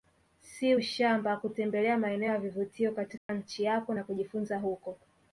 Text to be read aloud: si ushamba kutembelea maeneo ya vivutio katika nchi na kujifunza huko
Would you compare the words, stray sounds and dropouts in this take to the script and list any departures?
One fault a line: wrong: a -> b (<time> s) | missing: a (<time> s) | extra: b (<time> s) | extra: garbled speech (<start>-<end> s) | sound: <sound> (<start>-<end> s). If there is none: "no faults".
sound: dropout (3.2-3.3 s)
extra: yako (3.6 s)